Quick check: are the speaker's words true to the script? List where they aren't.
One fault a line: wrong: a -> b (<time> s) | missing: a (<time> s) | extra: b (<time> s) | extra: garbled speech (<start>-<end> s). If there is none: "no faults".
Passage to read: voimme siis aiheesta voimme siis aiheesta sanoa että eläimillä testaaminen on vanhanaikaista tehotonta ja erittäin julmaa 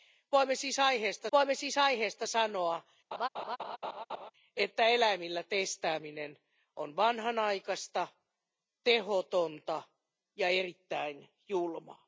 no faults